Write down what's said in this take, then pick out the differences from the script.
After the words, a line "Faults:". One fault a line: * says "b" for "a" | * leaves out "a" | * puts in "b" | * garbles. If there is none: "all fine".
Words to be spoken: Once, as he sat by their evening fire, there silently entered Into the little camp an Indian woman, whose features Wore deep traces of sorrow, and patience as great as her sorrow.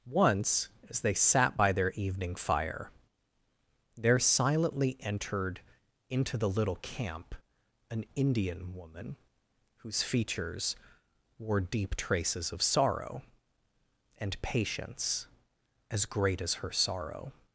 Once, as they sat by their evening fire, there silently entered Into the little camp an Indian woman, whose features Wore deep traces of sorrow, and patience as great as her sorrow.
Faults:
* says "they" for "he"